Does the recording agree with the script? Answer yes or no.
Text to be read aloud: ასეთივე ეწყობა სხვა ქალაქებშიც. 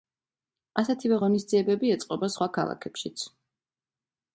no